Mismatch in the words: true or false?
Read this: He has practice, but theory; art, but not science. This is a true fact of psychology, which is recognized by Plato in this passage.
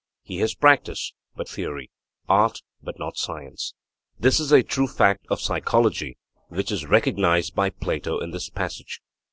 false